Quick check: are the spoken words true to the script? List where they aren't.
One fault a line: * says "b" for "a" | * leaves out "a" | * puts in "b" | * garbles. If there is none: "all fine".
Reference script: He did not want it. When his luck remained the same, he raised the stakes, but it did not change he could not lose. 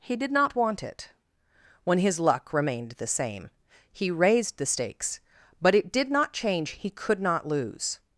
all fine